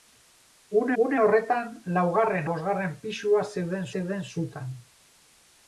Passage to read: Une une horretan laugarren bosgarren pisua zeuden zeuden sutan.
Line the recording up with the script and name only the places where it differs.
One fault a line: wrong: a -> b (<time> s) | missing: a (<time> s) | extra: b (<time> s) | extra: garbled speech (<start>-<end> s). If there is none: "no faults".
no faults